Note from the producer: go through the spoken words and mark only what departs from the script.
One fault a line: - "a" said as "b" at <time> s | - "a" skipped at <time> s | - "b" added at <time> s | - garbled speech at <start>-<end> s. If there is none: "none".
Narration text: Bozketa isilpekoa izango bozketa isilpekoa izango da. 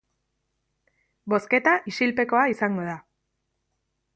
- "bozketa isilpekoa izango" skipped at 2.9 s